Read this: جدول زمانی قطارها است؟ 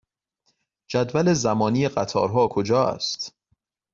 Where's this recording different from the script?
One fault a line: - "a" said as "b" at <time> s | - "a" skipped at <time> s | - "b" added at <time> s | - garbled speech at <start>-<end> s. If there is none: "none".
- "کجا" added at 2.4 s